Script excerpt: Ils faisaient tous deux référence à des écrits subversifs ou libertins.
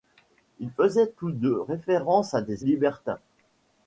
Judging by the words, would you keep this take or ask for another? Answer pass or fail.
fail